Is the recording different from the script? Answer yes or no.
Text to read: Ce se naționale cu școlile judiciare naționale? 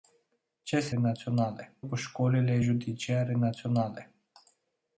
no